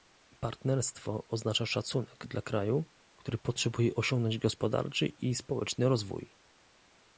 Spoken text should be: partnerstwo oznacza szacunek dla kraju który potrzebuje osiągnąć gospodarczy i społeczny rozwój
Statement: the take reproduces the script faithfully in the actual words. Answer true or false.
true